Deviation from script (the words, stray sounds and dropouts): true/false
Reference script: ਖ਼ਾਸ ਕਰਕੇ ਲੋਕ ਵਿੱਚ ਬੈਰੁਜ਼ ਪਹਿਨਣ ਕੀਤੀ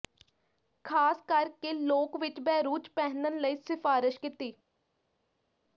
true